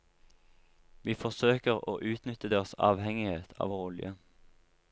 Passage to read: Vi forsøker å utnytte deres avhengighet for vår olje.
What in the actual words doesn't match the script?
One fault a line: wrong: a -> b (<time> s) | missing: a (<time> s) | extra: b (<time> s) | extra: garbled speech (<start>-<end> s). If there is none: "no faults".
wrong: for -> av (3.6 s)